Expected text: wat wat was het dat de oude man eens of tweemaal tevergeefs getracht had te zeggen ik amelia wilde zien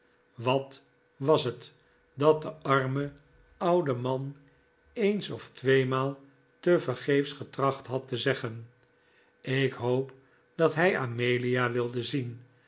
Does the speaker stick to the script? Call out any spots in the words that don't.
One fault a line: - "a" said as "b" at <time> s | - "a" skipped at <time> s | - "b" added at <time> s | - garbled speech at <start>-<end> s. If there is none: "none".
- "wat" skipped at 0.8 s
- "arme" added at 2.5 s
- "hoop dat hij" added at 9.7 s